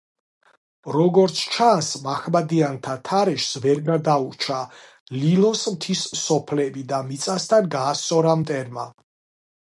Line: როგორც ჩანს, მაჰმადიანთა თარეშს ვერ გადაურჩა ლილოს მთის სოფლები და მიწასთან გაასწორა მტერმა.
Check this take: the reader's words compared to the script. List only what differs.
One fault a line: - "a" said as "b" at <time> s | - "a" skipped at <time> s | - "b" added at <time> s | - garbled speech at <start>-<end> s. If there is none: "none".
none